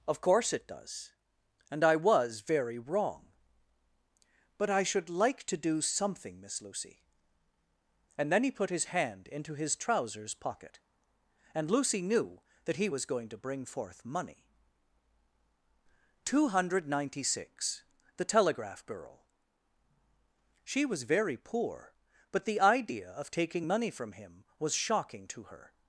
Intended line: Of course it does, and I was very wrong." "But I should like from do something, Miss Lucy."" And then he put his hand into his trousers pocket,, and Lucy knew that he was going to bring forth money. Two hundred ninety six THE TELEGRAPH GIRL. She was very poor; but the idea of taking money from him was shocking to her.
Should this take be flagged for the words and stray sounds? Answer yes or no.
yes